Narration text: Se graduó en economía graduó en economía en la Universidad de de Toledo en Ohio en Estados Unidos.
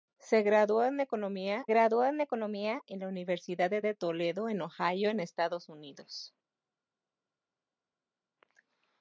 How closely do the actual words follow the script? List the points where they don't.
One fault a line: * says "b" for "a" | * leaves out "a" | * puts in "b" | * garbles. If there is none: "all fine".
all fine